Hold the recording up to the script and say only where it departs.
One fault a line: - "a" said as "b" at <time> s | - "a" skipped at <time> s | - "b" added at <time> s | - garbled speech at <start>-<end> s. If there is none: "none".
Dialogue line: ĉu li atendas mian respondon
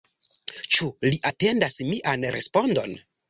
none